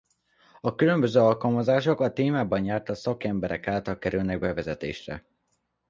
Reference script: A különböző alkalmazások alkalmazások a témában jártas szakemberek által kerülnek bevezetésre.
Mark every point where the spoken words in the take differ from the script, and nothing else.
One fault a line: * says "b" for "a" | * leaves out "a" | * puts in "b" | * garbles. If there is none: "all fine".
* leaves out "alkalmazások"